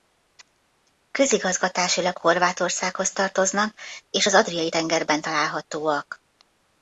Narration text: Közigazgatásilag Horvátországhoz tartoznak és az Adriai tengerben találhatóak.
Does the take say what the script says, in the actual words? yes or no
yes